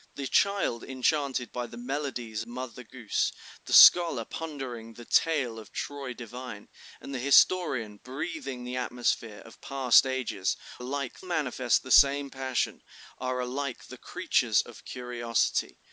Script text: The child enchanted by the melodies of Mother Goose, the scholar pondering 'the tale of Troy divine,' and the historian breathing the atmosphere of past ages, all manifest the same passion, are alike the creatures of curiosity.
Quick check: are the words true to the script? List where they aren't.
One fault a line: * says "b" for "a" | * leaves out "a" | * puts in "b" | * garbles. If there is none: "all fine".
* leaves out "of"
* says "alike" for "all"